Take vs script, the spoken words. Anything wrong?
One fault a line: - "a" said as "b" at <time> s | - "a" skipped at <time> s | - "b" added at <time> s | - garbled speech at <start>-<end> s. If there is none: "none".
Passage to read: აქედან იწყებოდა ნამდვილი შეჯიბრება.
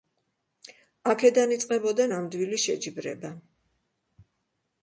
none